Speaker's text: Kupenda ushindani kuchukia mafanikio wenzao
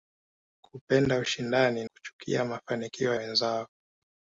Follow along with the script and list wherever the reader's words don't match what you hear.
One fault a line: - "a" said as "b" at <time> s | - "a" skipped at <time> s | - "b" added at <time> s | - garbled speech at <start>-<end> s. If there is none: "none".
none